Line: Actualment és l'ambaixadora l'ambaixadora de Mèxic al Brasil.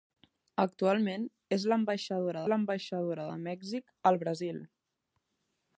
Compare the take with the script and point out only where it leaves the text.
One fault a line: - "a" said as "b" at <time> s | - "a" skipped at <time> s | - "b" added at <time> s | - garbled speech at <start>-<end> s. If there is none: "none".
none